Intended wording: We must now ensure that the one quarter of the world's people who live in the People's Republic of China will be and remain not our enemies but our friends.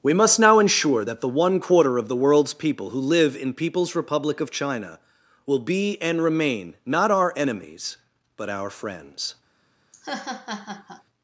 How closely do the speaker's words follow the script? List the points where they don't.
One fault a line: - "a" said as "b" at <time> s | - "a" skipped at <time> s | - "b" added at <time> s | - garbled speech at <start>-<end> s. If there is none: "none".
- "the" skipped at 3.5 s